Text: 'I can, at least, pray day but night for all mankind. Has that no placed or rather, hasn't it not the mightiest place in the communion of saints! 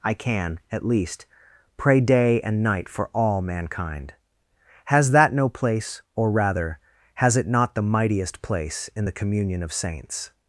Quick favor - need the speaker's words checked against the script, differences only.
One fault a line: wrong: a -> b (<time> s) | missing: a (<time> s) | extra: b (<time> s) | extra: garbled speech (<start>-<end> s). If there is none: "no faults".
wrong: but -> and (2.4 s)
wrong: placed -> place (5.5 s)
wrong: hasn't -> has (7.2 s)